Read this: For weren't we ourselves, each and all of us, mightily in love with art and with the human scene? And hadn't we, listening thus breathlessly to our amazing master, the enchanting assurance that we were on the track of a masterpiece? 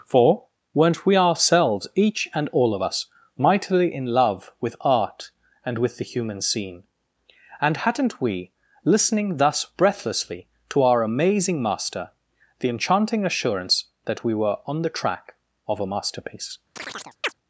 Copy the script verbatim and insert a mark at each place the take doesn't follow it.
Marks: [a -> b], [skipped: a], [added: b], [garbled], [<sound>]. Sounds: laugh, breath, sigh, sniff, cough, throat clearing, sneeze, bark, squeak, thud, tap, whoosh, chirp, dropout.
For weren't we ourselves, each and all of us, mightily in love with art and with the human scene? And hadn't we, listening thus breathlessly to our amazing master, the enchanting assurance that we were on the track of a masterpiece? [chirp]